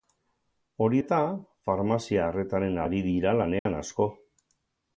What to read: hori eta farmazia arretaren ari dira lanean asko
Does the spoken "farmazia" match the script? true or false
true